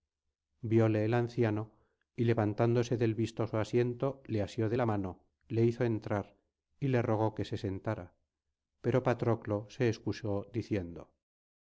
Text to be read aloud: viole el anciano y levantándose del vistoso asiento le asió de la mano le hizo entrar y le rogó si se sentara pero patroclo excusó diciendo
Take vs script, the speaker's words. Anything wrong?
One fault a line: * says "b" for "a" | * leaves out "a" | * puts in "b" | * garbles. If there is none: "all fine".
* says "que" for "si"
* puts in "se"